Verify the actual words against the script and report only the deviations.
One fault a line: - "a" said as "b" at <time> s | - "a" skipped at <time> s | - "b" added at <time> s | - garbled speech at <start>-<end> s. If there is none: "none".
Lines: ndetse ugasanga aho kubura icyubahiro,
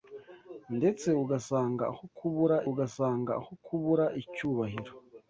- "ugasanga aho kubura" added at 2.7 s